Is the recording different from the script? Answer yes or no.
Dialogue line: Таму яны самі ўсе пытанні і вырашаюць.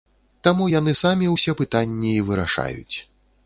no